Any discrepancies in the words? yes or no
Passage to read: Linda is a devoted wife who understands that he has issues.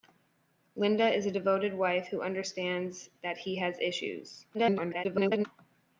yes